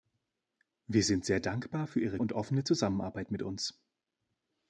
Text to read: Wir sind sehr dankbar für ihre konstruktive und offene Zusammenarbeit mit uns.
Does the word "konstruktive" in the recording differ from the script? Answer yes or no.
yes